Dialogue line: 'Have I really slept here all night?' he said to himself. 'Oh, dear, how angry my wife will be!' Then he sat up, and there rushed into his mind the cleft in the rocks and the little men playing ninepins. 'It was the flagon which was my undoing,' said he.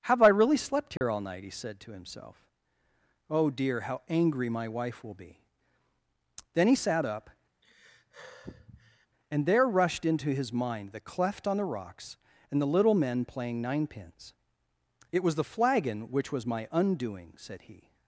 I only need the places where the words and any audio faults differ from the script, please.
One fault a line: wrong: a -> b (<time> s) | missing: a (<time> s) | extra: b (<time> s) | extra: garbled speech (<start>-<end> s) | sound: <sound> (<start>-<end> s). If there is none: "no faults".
sound: dropout (1.0-1.0 s)
sound: sigh (7.6-9.1 s)
wrong: in -> on (11.5 s)